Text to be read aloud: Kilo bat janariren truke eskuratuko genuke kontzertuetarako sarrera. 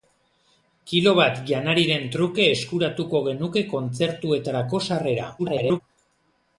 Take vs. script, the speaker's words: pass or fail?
fail